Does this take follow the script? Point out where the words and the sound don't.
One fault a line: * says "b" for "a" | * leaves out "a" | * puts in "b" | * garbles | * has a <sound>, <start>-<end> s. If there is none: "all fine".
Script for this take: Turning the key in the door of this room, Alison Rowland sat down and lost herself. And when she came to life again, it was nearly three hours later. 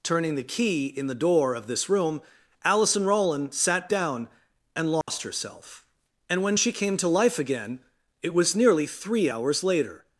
* has a dropout, 5.0-5.1 s